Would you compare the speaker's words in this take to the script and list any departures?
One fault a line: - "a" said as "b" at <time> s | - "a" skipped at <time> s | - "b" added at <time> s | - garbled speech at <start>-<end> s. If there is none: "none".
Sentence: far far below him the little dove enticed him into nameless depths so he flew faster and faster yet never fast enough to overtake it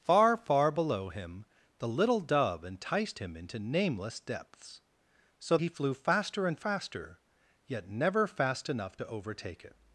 none